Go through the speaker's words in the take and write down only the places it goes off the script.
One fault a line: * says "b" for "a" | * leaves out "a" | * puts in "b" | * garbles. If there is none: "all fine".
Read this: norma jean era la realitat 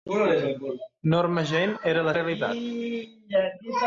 all fine